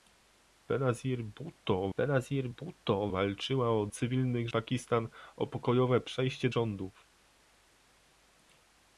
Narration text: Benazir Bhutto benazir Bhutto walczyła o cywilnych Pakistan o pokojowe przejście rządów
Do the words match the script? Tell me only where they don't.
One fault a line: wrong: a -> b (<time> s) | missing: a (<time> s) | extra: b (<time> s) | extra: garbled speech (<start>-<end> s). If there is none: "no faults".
no faults